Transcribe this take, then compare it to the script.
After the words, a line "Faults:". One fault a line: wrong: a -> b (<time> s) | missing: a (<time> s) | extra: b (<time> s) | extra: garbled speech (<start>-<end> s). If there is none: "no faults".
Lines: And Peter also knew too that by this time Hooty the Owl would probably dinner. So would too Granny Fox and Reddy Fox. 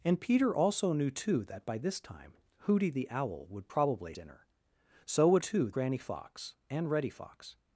And Peter also knew too that by this time Hooty the Owl would probably dinner. So would too Granny Fox and Reddy Fox.
Faults:
no faults